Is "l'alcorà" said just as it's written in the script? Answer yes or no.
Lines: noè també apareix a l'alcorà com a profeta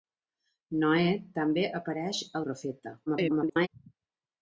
no